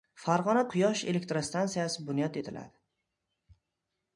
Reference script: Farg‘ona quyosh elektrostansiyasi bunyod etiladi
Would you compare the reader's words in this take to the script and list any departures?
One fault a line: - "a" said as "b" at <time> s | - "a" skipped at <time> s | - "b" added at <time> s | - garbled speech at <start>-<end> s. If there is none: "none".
none